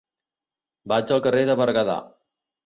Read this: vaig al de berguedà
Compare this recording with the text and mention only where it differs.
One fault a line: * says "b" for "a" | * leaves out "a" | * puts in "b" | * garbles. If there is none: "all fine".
* puts in "carrer"